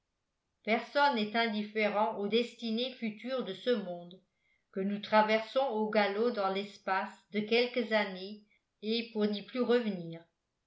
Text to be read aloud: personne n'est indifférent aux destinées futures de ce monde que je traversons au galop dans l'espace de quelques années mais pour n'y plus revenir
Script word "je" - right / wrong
wrong